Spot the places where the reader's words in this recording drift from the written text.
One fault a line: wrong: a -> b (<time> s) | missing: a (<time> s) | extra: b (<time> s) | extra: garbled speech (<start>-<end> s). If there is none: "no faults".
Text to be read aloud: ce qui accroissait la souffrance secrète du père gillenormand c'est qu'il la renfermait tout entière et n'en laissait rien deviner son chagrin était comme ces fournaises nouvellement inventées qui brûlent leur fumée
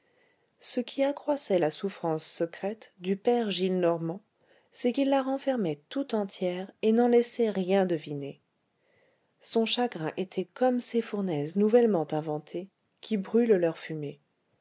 no faults